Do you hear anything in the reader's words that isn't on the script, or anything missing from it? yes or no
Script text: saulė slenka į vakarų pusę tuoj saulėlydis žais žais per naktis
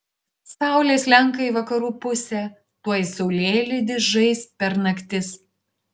yes